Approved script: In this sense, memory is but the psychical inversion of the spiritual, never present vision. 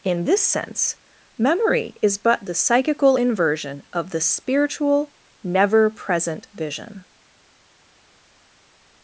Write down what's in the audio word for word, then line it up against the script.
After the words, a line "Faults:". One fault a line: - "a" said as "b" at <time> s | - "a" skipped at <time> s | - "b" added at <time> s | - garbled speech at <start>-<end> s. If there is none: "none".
In this sense, memory is but the psychical inversion of the spiritual, never present vision.
Faults:
none